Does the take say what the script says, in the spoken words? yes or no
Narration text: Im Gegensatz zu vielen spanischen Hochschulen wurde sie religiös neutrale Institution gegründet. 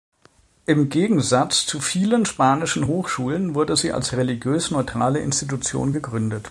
no